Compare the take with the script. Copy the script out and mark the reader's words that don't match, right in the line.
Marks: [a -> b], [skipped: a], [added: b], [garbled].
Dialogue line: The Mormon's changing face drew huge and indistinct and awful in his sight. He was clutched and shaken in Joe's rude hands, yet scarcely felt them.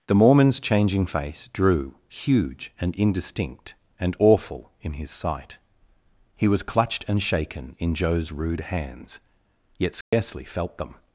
The Mormon's changing face drew huge and indistinct and awful in his sight. He was clutched and shaken in Joe's rude hands, yet scarcely felt them.